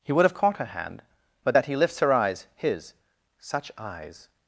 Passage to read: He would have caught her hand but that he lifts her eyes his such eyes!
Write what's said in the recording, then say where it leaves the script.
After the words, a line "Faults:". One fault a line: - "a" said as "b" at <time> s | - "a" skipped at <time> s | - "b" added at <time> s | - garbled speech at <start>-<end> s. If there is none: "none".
He would have caught her hand but that he lifts her eyes his such eyes!
Faults:
none